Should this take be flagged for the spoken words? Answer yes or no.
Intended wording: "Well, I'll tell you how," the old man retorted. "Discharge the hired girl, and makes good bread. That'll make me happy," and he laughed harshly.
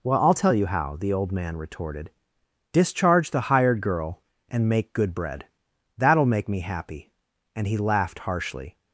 yes